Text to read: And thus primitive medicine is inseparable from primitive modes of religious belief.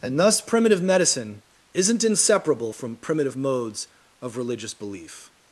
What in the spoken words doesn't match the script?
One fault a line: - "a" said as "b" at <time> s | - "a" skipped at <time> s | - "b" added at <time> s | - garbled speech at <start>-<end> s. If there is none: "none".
- "is" said as "isn't" at 1.7 s